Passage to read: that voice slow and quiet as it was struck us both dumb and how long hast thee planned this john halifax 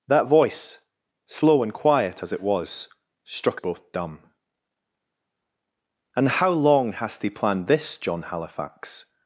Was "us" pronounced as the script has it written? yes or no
no